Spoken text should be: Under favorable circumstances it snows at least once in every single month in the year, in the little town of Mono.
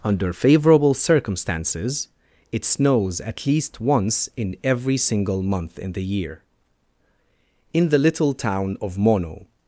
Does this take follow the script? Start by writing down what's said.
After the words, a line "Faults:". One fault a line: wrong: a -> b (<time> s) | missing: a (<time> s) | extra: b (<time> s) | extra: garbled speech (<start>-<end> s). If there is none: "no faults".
Under favorable circumstances it snows at least once in every single month in the year, in the little town of Mono.
Faults:
no faults